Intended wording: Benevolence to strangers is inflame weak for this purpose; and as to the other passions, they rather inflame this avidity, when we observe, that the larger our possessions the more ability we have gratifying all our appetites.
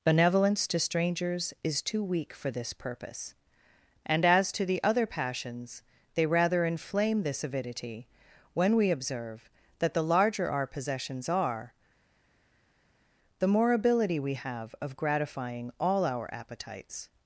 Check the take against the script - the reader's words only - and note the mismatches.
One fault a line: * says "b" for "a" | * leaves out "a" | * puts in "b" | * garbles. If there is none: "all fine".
* says "too" for "inflame"
* puts in "are"
* puts in "of"